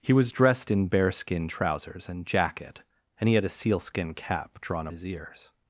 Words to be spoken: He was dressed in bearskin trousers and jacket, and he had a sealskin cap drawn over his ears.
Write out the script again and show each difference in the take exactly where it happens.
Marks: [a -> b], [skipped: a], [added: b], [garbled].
He was dressed in bearskin trousers and jacket, and he had a sealskin cap drawn [skipped: over] his ears.